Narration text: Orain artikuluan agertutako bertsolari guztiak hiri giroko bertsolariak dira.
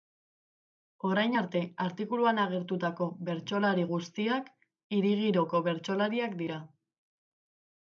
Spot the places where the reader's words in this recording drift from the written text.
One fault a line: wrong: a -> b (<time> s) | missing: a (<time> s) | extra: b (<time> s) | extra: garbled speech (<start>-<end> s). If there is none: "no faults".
extra: arte (1.4 s)